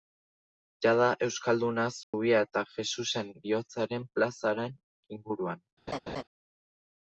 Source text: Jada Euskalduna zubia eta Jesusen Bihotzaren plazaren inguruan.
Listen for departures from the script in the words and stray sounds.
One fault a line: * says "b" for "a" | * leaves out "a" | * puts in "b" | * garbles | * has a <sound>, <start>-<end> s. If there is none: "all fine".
* has a dropout, 2.0-2.1 s
* has a laugh, 5.9-6.2 s